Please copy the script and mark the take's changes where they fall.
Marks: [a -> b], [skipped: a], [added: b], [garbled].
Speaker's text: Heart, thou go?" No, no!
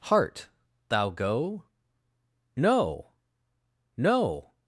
Heart, thou go?" No, no!